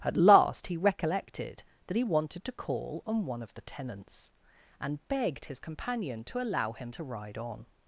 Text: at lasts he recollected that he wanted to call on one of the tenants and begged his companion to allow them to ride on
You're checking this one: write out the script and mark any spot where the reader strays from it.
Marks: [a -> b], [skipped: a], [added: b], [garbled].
at [lasts -> last] he recollected that he wanted to call on one of the tenants and begged his companion to allow [them -> him] to ride on